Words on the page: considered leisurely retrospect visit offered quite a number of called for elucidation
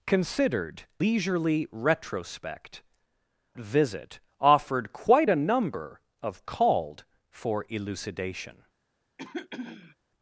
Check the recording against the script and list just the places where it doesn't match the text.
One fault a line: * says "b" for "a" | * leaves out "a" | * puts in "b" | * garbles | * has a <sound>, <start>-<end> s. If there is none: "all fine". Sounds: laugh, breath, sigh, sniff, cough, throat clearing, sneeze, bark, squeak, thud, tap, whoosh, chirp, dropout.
* has a throat clearing, 9.2-10.0 s